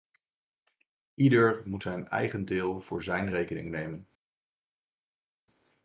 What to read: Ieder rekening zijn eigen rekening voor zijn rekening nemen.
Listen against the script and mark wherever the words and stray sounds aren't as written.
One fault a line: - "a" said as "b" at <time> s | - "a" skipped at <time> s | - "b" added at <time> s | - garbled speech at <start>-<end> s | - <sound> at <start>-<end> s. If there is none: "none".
- "rekening" said as "moet" at 1.6 s
- "rekening" said as "deel" at 2.4 s